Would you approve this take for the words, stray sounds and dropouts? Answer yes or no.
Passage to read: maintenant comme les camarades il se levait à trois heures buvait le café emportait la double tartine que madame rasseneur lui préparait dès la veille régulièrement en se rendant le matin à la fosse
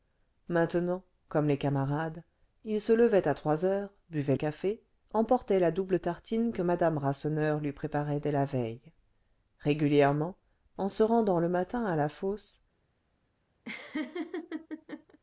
no